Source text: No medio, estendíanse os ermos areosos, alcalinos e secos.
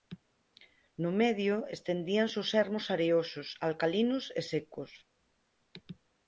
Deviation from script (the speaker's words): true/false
false